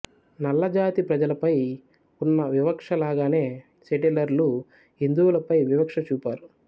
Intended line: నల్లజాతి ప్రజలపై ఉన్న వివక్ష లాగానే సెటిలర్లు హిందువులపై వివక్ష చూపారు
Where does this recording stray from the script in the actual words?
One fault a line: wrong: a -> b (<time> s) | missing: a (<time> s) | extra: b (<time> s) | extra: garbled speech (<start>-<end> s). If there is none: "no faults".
no faults